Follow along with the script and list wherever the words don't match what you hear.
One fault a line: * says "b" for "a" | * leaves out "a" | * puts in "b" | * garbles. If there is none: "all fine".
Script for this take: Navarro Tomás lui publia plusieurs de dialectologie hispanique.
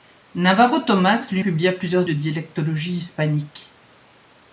all fine